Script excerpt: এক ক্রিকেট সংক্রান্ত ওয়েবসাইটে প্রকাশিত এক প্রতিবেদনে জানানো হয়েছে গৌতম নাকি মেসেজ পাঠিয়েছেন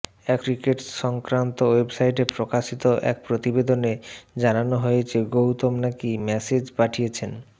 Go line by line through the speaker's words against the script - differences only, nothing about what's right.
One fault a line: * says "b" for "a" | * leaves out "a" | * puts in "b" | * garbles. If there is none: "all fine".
all fine